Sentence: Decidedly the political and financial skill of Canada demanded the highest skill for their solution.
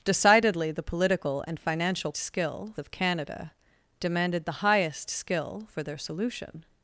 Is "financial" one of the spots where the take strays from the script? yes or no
no